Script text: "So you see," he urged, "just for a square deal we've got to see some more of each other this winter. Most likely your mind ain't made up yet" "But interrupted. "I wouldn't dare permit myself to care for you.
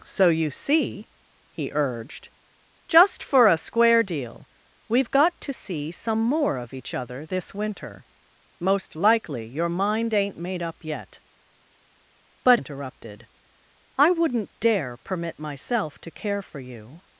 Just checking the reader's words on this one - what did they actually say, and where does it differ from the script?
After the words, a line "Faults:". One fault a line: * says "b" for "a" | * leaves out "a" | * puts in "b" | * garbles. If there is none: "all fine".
"So you see," he urged, "just for a square deal we've got to see some more of each other this winter. Most likely your mind ain't made up yet" "But interrupted. "I wouldn't dare permit myself to care for you.
Faults:
all fine